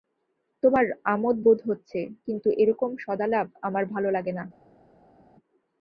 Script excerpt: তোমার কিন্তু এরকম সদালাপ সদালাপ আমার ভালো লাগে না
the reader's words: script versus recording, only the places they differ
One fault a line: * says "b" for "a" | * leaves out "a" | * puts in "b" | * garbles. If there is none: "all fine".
* puts in "আমোদ বোধ হচ্ছে"
* leaves out "সদালাপ"